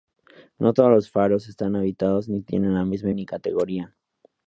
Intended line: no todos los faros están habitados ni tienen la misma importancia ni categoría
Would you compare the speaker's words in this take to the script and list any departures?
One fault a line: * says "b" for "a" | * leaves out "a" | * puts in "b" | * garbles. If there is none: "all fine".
* leaves out "importancia"